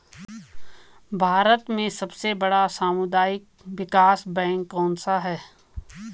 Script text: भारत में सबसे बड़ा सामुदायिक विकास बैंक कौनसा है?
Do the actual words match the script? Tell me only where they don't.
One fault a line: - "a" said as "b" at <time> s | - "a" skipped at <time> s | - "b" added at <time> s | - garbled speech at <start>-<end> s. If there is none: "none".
none